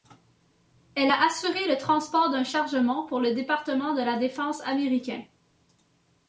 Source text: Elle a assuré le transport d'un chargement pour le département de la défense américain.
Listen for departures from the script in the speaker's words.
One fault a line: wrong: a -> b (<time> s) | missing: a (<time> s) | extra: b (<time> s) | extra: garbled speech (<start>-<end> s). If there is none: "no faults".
no faults